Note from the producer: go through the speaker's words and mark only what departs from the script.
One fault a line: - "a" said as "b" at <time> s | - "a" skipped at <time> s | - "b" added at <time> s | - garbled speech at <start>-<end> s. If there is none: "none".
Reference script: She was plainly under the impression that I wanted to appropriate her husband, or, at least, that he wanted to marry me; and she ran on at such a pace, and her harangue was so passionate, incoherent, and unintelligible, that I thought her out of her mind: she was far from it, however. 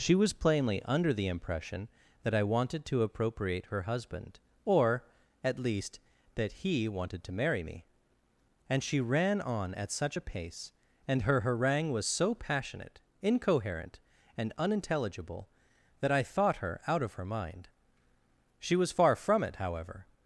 none